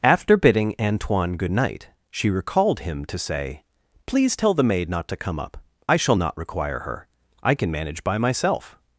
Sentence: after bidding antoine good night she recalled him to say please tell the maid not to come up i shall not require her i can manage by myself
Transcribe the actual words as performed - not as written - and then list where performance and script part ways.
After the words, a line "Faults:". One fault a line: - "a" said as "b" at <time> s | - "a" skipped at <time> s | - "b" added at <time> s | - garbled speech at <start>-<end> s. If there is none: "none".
after bidding antoine good night she recalled him to say please tell the maid not to come up i shall not require her i can manage by myself
Faults:
none